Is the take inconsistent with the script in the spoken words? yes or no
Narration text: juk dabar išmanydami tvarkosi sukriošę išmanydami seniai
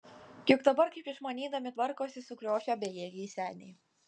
yes